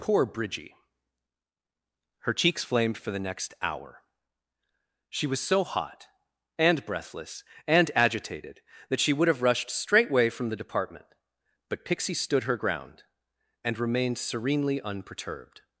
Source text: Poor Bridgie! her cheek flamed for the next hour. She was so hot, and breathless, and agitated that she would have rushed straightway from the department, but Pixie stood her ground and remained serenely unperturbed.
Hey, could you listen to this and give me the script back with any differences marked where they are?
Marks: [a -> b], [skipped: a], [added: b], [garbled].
Poor Bridgie! her [cheek -> cheeks] flamed for the next hour. She was so hot, and breathless, and agitated that she would have rushed straightway from the department, but Pixie stood her ground and remained serenely unperturbed.